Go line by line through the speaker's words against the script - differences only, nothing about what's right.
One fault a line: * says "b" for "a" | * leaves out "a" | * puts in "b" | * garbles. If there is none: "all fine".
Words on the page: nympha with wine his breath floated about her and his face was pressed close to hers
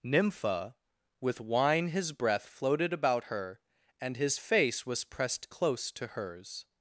all fine